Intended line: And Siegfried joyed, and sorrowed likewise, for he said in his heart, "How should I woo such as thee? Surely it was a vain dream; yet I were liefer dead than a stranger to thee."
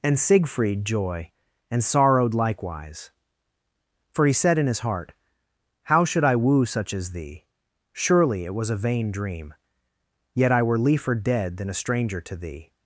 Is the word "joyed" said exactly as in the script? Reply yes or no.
no